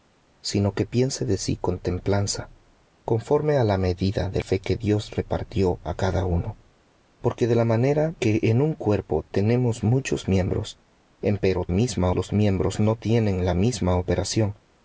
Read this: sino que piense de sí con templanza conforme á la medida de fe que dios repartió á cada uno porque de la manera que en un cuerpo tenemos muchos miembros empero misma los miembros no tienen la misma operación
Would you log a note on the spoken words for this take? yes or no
no